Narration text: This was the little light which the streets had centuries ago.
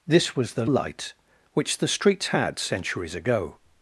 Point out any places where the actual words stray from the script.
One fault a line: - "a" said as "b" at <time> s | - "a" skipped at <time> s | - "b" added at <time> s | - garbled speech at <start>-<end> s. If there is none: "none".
- "little" skipped at 0.7 s